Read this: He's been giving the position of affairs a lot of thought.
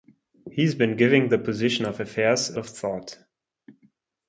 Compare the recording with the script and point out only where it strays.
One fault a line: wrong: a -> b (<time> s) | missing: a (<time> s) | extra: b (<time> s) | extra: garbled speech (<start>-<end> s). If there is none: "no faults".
missing: lot (2.6 s)